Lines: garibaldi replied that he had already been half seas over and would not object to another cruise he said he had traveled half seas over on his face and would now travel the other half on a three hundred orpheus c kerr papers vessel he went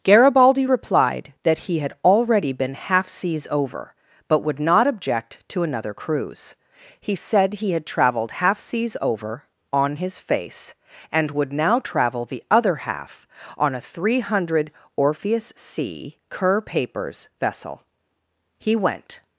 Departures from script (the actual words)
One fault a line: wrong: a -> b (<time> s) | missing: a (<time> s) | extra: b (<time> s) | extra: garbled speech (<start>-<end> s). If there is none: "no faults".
wrong: and -> but (4.3 s)